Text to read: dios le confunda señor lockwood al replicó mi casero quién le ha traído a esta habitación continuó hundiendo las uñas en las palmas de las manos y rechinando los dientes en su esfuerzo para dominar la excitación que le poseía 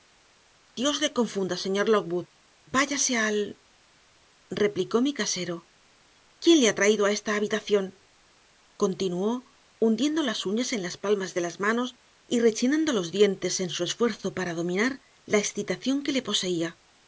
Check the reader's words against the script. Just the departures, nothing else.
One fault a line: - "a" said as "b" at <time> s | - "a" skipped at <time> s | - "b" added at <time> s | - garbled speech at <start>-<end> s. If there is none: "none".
- "váyase" added at 2.8 s